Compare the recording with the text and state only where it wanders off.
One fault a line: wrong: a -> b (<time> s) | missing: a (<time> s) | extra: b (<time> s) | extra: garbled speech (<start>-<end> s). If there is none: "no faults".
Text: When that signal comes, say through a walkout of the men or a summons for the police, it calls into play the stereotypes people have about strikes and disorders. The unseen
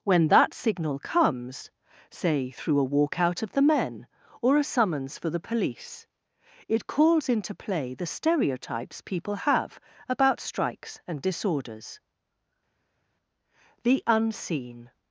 no faults